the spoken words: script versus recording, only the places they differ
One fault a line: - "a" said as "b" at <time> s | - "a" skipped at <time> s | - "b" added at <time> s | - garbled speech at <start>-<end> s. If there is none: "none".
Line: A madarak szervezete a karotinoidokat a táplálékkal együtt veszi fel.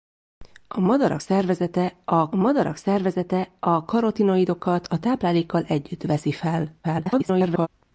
- "madarak szervezete a" added at 2.3 s
- garbled speech at 6.8-7.7 s